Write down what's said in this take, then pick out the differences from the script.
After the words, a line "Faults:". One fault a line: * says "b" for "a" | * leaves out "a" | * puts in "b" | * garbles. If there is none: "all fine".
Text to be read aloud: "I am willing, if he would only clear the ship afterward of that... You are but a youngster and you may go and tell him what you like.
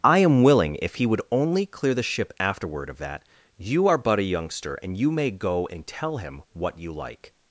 "I am willing, if he would only clear the ship afterward of that... You are but a youngster and you may go and tell him what you like.
Faults:
all fine